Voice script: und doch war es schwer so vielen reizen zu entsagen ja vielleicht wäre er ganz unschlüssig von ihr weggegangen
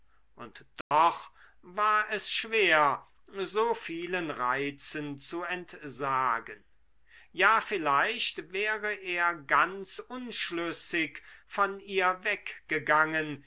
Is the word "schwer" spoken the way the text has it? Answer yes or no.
yes